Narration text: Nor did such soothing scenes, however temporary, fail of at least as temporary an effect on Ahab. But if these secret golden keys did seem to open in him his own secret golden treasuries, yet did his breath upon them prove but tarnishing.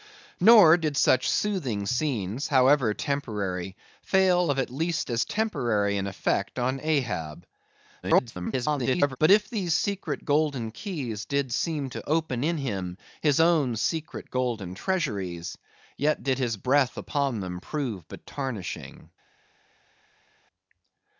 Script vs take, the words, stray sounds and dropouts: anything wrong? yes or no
yes